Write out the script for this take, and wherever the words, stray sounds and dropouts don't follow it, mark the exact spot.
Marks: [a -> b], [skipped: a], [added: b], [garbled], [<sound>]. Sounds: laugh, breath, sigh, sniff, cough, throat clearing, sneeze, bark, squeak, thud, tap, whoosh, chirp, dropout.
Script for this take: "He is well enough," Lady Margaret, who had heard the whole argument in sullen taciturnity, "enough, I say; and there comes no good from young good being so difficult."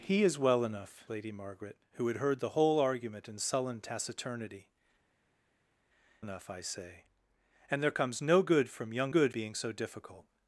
"He is well enough," Lady Margaret, who had heard the whole argument in sullen taciturnity, "enough, I say; and there comes no good from young good being so difficult."